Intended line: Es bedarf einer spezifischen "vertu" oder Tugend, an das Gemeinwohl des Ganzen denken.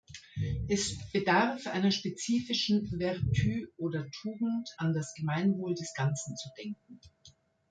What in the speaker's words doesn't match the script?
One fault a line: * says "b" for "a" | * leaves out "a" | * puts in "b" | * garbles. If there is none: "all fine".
* puts in "zu"